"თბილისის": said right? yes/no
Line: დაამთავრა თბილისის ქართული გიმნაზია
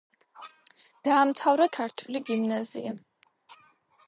no